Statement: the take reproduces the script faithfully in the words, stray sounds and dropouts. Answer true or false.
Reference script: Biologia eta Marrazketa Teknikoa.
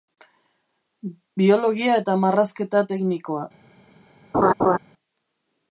false